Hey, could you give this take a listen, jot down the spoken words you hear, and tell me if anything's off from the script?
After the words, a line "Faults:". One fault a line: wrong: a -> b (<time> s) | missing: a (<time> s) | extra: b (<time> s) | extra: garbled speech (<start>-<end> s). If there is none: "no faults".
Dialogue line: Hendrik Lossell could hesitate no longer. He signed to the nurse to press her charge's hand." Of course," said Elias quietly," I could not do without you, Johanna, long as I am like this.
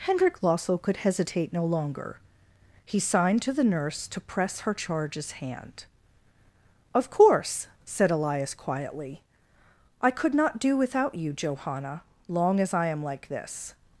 Hendrik Lossell could hesitate no longer. He signed to the nurse to press her charge's hand." Of course," said Elias quietly," I could not do without you, Johanna, long as I am like this.
Faults:
no faults